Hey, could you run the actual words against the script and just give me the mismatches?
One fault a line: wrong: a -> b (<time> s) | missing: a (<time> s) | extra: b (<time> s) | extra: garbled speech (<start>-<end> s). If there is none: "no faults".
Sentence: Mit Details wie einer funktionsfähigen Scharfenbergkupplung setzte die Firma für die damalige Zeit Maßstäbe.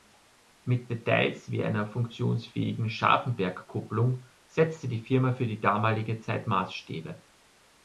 no faults